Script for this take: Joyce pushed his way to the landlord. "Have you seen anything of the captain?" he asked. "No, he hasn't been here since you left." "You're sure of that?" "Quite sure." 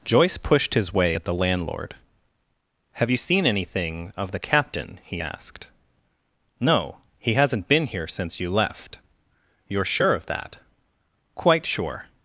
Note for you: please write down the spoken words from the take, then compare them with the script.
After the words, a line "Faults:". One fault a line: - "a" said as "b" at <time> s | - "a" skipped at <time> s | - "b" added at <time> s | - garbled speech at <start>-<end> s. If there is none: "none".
Joyce pushed his way at the landlord. "Have you seen anything of the captain?" he asked. "No, he hasn't been here since you left." "You're sure of that?" "Quite sure."
Faults:
- "to" said as "at" at 1.1 s